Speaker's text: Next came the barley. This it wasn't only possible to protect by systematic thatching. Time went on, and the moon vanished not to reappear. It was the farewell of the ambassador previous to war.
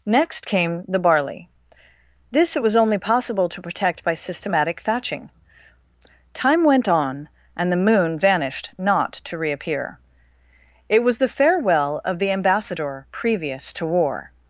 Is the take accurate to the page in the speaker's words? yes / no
no